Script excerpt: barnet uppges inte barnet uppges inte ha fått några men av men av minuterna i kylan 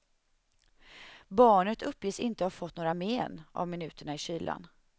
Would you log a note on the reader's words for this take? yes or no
yes